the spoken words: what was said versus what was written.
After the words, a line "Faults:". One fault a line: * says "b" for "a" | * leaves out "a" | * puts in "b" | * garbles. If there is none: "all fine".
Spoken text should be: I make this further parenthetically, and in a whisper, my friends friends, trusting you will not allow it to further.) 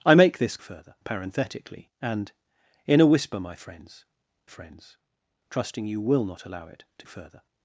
I make this further parenthetically, and in a whisper, my friends friends, trusting you will not allow it to further.)
Faults:
all fine